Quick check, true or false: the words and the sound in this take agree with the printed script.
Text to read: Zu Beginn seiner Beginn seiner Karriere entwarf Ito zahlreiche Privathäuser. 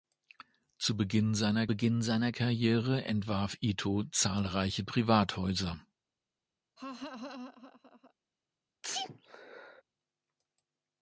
false